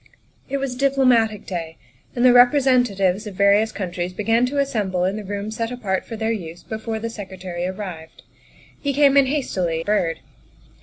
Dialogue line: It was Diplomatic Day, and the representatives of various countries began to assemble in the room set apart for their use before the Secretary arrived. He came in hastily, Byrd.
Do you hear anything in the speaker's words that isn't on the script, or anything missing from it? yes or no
no